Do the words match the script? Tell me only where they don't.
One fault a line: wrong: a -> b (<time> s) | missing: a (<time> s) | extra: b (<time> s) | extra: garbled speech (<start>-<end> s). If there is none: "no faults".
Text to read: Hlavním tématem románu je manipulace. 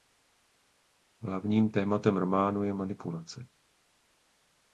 no faults